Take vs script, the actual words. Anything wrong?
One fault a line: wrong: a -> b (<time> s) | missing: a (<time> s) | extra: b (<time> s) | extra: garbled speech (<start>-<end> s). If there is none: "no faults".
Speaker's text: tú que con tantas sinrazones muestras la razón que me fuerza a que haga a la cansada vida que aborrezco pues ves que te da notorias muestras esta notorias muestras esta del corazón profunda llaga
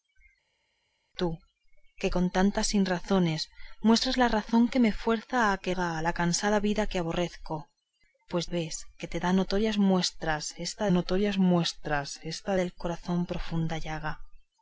no faults